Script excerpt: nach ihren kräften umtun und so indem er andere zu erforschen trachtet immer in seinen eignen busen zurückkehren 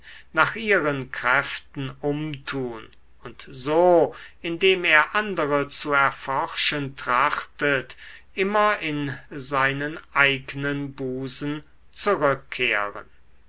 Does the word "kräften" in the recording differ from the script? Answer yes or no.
no